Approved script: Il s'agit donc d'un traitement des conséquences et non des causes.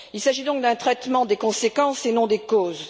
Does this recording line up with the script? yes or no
yes